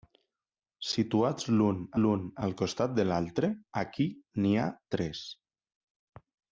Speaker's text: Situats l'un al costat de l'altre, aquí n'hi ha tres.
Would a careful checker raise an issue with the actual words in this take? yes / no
yes